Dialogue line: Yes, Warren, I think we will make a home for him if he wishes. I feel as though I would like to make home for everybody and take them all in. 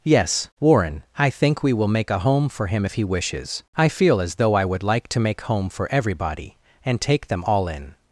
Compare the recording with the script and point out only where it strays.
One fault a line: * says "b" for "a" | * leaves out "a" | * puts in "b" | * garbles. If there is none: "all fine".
all fine